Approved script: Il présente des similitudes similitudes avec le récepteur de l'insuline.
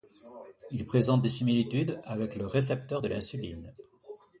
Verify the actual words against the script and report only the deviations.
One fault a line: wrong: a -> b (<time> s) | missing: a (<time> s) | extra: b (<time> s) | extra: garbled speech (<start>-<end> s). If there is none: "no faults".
missing: similitudes (2.0 s)